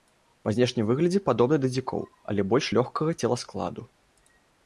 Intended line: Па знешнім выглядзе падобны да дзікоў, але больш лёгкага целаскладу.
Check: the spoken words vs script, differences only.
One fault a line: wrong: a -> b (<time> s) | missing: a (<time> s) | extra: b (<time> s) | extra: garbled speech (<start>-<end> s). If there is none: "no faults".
no faults